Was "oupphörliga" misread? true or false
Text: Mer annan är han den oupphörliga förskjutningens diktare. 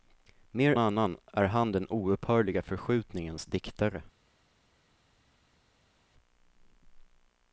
false